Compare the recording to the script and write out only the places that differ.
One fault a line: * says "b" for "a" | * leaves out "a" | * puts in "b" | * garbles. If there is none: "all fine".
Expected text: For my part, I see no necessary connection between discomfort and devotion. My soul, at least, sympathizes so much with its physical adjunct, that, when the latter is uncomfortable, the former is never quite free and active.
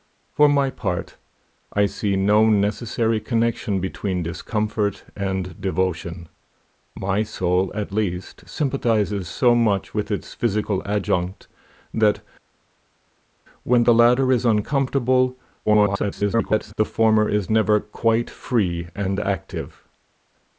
* garbles